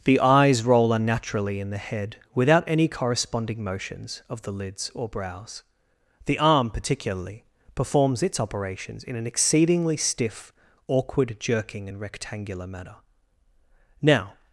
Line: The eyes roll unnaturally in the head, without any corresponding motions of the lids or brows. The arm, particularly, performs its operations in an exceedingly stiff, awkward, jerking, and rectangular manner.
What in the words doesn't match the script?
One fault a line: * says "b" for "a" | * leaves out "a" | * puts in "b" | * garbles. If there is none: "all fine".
* puts in "Now"